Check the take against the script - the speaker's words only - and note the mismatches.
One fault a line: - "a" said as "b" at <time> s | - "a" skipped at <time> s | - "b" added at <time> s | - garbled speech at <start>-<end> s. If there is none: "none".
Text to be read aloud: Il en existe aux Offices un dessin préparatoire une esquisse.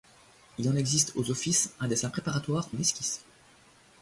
none